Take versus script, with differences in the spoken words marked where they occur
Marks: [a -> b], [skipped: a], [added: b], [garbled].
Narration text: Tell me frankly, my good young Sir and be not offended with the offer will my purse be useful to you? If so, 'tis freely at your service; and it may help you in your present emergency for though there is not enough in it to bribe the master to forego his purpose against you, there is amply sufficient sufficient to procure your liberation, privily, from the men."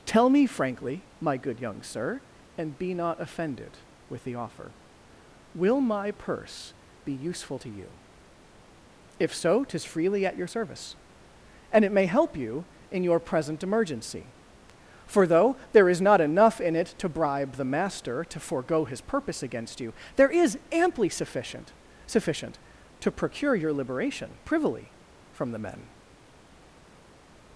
Tell me frankly, my good young Sir and be not offended with the offer will my purse be useful to you? If so, 'tis freely at your service; and it may help you in your present emergency for though there is not enough in it to bribe the master to forego his purpose against you, there is amply sufficient sufficient to procure your liberation, privily, from the men."